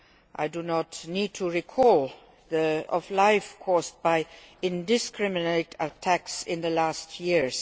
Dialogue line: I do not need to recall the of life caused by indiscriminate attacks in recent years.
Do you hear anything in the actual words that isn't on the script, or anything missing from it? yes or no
no